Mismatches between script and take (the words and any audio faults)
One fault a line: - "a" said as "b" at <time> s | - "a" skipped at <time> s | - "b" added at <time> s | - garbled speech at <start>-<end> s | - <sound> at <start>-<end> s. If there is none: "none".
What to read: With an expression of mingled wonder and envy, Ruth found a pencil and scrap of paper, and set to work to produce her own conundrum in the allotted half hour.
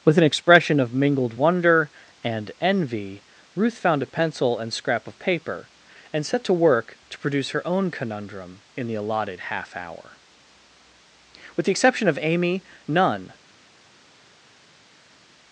- "With the exception of Amy none" added at 11.6 s